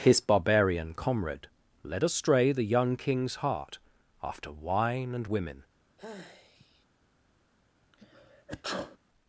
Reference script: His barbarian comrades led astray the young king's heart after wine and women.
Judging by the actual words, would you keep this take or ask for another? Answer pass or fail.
fail